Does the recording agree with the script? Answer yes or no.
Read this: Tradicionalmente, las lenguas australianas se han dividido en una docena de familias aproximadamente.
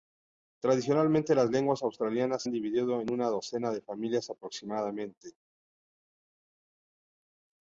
no